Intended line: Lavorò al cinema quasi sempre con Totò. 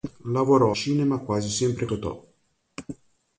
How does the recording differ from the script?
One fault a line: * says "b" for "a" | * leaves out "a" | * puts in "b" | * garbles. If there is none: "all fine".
* leaves out "al"
* leaves out "con"